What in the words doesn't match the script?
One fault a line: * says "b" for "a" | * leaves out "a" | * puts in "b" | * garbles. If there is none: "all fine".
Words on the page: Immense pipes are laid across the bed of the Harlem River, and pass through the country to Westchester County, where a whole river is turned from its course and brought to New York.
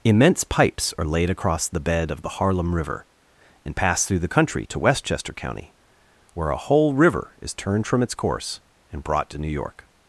all fine